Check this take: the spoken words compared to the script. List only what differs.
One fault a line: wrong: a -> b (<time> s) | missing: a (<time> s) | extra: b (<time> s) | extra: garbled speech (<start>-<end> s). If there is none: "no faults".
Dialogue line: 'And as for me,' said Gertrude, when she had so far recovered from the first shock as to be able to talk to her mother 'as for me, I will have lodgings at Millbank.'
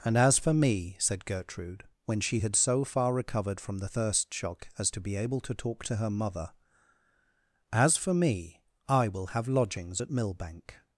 wrong: first -> thirst (3.9 s)